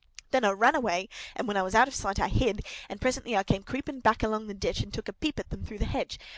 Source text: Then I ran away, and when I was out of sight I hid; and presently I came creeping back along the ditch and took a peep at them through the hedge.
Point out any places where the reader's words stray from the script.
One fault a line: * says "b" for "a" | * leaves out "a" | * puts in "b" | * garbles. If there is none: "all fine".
all fine